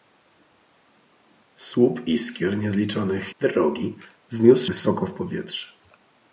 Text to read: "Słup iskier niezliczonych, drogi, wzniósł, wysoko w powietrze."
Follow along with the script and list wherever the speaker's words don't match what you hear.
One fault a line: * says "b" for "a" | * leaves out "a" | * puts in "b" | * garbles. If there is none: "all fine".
all fine